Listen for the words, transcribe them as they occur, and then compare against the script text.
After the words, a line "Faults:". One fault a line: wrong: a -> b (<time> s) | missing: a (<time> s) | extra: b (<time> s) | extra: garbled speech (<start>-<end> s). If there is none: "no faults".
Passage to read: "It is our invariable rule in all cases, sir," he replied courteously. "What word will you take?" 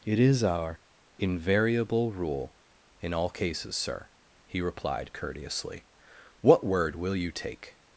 "It is our invariable rule in all cases, sir," he replied courteously. "What word will you take?"
Faults:
no faults